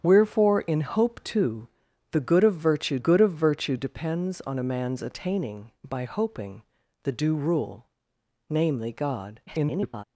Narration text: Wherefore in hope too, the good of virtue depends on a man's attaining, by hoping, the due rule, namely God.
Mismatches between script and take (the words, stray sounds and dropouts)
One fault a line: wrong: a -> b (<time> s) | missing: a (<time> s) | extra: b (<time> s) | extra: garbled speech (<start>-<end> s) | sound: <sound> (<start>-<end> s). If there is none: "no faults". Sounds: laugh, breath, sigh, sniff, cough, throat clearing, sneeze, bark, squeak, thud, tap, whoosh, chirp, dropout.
extra: good of virtue (3.0 s)
extra: garbled speech (9.5-10.0 s)